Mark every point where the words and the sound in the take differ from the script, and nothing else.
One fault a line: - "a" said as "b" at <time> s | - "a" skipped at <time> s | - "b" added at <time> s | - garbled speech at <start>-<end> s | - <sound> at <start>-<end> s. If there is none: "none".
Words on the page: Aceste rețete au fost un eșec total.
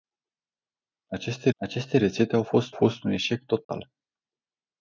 - "aceste" added at 1.6 s
- "fost" added at 2.7 s
- dropout at 3.6-3.7 s